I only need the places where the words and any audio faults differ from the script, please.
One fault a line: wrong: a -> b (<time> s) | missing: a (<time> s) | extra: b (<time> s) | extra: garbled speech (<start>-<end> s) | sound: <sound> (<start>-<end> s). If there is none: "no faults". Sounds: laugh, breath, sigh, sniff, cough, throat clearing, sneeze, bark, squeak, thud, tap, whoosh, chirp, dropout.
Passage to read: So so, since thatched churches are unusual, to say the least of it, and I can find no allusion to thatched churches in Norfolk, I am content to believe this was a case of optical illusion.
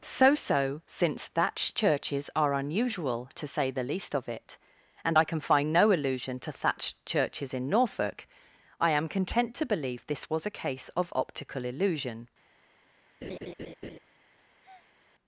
sound: laugh (13.2-14.0 s)
sound: breath (14.6-15.0 s)